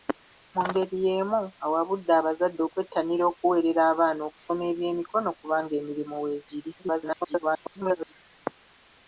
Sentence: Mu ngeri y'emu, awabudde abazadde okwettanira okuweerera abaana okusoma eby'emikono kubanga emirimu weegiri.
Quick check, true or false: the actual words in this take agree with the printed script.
false